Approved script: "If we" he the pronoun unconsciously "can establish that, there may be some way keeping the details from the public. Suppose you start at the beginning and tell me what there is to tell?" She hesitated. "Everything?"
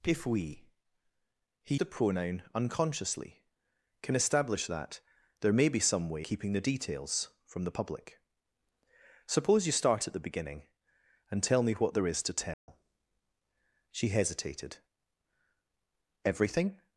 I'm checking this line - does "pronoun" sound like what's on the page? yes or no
yes